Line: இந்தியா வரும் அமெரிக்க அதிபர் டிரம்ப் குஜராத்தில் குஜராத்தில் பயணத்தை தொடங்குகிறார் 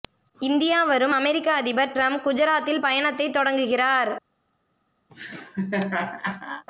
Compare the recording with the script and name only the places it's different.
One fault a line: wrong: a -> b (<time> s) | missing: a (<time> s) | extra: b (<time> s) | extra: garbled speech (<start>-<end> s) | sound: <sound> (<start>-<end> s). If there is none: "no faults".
missing: குஜராத்தில் (2.8 s)
sound: laugh (5.1-6.6 s)